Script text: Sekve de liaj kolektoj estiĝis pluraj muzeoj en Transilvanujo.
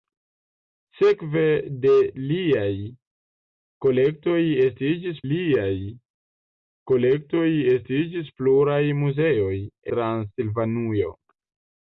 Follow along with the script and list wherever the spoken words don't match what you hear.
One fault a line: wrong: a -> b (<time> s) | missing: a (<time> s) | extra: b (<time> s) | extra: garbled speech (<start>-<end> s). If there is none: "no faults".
extra: liaj kolektoj estiĝis (5.3 s)
missing: en (9.6 s)